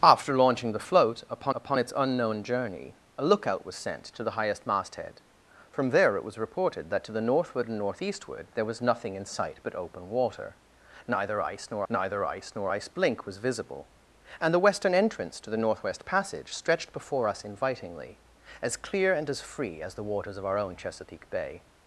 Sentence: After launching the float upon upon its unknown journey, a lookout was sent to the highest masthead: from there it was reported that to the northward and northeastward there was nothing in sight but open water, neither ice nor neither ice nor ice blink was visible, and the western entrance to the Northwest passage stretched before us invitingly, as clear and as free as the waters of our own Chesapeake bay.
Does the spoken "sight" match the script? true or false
true